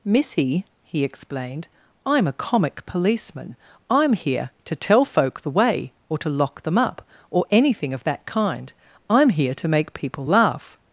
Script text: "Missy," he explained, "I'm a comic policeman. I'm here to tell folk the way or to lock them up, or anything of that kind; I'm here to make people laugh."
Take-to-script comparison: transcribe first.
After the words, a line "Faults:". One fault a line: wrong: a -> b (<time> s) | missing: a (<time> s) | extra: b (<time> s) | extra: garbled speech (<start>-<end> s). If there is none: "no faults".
"Missy," he explained, "I'm a comic policeman. I'm here to tell folk the way or to lock them up, or anything of that kind; I'm here to make people laugh."
Faults:
no faults